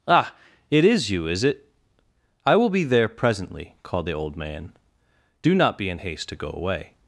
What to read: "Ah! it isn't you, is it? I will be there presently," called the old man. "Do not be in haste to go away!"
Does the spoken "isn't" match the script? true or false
false